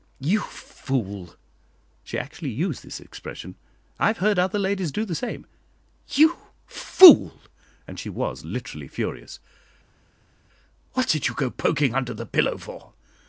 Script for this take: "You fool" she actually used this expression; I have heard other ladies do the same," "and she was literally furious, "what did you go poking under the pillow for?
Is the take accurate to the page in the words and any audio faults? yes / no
no